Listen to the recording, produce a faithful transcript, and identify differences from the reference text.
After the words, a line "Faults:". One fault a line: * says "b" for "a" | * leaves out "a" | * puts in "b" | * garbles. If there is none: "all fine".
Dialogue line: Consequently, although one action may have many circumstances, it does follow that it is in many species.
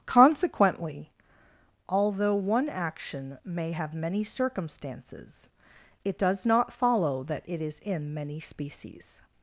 Consequently, although one action may have many circumstances, it does not follow that it is in many species.
Faults:
* puts in "not"